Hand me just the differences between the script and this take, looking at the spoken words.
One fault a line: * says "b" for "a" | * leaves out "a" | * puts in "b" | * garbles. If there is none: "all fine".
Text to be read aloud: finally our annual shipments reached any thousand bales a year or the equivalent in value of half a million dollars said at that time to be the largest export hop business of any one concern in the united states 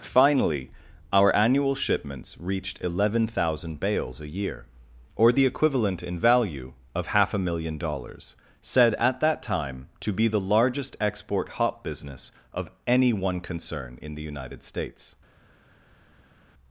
* says "eleven" for "any"